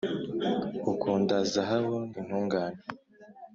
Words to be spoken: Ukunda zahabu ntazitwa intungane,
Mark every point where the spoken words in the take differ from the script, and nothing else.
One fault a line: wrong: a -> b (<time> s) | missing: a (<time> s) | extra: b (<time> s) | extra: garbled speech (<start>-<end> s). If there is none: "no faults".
missing: ntazitwa (2.0 s)